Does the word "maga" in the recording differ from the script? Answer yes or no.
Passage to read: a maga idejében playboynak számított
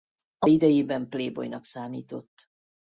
yes